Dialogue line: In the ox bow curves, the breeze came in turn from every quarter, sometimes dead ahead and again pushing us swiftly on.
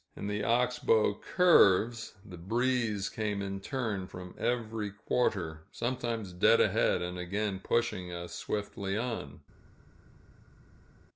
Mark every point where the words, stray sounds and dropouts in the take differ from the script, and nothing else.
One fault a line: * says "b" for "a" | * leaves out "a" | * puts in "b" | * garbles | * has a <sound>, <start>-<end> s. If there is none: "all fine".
all fine